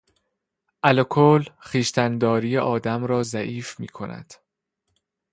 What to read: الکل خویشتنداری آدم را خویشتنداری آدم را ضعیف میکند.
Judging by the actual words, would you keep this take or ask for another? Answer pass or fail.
fail